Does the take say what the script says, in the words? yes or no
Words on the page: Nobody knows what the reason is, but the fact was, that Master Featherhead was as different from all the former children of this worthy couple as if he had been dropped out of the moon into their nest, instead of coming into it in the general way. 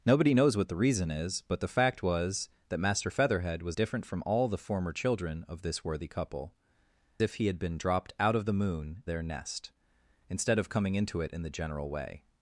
no